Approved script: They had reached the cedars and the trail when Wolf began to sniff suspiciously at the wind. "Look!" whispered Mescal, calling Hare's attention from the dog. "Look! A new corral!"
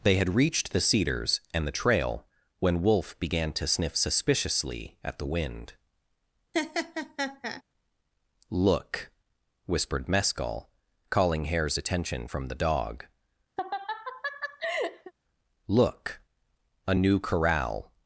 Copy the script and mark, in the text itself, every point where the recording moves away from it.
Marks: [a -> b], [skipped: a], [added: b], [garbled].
They had reached the cedars and the trail when Wolf began to sniff suspiciously at the wind. "Look!" whispered Mescal, calling Hare's attention from the dog. "Look! A new corral!"